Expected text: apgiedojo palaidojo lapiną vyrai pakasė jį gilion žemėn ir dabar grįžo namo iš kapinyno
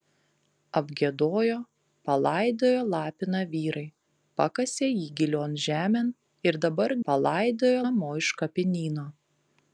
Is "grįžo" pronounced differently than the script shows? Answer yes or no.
yes